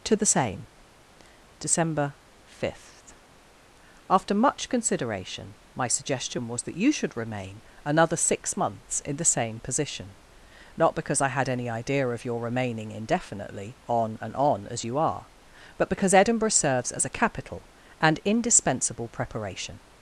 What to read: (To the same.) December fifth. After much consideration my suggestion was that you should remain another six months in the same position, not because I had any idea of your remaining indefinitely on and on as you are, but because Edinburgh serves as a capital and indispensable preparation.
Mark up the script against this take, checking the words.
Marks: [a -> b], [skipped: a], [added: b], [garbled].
(To the same.) December fifth. After much consideration my suggestion was that you should remain another six months in the same position, not because I had any idea of your remaining indefinitely on and on as you are, but because Edinburgh serves as a capital and indispensable preparation.